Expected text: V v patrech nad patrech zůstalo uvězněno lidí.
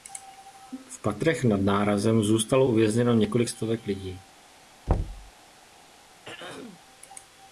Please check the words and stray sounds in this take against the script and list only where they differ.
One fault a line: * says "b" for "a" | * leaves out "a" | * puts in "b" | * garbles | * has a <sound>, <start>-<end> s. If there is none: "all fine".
* leaves out "v"
* says "nárazem" for "patrech"
* puts in "několik stovek"
* has a thud, 4.9-5.3 s
* has a throat clearing, 6.2-6.8 s